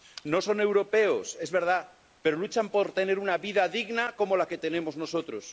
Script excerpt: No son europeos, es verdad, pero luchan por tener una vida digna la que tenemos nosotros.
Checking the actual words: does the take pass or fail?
fail